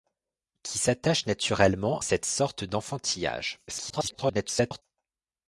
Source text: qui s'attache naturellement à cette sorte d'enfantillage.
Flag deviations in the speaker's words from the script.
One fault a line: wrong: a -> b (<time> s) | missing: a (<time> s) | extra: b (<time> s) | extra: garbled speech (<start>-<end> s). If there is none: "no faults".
missing: à (2.0 s)
extra: garbled speech (3.7-4.8 s)